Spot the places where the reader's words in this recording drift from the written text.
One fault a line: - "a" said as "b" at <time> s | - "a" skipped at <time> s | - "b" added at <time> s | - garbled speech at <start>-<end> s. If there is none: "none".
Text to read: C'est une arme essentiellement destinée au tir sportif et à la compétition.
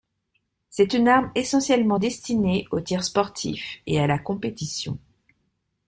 none